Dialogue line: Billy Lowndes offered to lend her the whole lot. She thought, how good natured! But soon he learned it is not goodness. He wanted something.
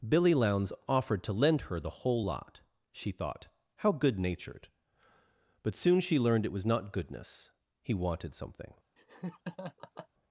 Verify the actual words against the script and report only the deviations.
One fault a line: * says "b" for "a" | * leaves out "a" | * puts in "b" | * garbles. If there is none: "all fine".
* says "she" for "he"
* says "was" for "is"